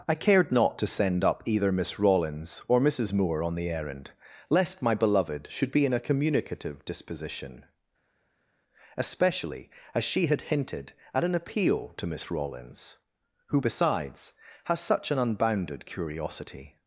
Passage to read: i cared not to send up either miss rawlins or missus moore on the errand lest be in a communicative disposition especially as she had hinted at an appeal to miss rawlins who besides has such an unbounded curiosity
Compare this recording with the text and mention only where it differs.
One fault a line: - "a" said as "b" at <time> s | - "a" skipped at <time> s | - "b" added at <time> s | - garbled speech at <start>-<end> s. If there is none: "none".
- "my beloved should" added at 4.8 s